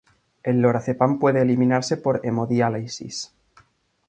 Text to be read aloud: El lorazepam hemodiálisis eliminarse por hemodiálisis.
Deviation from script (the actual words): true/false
true